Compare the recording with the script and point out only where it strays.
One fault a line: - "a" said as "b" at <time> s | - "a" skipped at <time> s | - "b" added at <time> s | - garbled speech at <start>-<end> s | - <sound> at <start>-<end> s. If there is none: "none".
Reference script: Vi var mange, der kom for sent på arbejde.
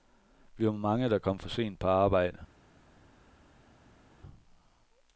none